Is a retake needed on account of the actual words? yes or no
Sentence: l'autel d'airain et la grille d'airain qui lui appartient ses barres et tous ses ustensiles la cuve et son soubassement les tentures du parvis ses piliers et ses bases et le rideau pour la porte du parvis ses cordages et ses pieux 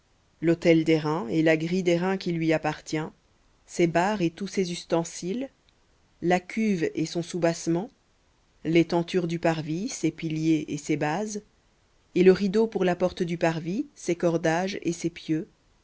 no